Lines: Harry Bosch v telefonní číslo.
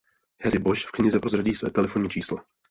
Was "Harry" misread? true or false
false